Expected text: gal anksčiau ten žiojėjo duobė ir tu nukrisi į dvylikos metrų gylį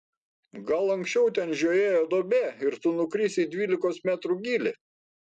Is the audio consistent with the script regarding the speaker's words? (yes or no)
yes